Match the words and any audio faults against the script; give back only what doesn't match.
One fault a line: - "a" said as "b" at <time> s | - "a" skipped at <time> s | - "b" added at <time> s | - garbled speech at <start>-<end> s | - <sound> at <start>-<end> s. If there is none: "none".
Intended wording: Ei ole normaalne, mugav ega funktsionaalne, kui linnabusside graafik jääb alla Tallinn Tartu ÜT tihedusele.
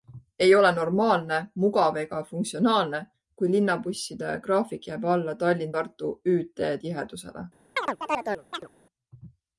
- chirp at 7.8-8.7 s